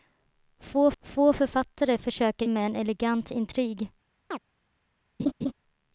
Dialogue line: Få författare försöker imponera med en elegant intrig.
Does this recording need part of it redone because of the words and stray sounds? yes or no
yes